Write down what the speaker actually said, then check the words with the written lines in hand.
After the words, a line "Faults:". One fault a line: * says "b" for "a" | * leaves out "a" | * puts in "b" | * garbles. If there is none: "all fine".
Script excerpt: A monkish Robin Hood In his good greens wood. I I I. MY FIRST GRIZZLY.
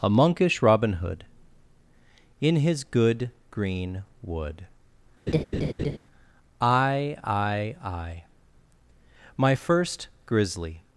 A monkish Robin Hood In his good green wood. I I I. MY FIRST GRIZZLY.
Faults:
* says "green" for "greens"